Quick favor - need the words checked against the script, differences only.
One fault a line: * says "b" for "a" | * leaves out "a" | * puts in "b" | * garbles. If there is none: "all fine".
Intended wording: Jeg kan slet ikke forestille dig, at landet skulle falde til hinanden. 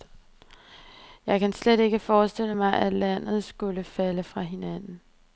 * says "mig" for "dig"
* says "fra" for "til"